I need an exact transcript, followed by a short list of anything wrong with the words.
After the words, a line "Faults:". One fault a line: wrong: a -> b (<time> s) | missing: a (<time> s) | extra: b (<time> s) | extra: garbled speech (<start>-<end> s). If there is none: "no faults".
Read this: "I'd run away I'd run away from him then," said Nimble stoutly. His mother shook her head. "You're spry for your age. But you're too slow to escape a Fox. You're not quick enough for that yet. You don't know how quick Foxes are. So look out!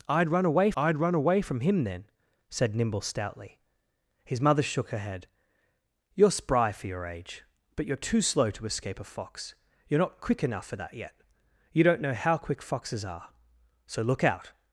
"I'd run away I'd run away from him then," said Nimble stoutly. His mother shook her head. "You're spry for your age. But you're too slow to escape a Fox. You're not quick enough for that yet. You don't know how quick Foxes are. So look out!
Faults:
no faults